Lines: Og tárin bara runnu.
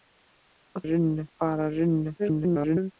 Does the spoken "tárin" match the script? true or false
false